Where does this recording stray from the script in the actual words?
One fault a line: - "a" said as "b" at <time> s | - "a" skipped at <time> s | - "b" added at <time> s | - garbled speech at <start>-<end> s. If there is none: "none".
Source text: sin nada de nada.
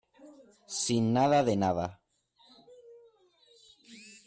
none